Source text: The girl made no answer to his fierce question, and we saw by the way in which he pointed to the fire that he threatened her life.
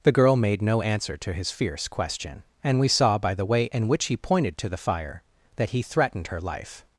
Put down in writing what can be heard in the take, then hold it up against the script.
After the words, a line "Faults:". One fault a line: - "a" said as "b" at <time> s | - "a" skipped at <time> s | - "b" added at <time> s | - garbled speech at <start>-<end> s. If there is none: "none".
The girl made no answer to his fierce question, and we saw by the way in which he pointed to the fire that he threatened her life.
Faults:
none